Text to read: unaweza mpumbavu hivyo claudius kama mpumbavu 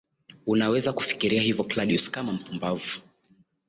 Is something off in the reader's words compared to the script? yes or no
yes